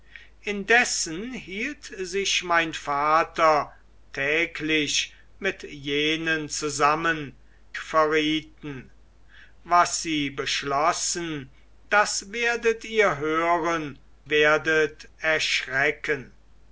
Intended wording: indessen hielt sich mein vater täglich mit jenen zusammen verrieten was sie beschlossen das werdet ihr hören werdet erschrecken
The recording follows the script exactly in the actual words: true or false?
true